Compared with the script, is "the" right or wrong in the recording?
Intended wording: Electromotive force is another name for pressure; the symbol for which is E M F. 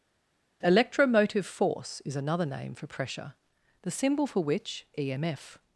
right